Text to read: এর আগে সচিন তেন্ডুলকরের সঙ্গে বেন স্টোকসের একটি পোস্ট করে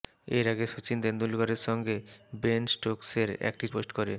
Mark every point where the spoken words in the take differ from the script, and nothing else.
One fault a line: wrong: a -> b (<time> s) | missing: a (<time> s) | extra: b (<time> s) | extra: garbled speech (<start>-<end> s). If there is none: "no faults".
no faults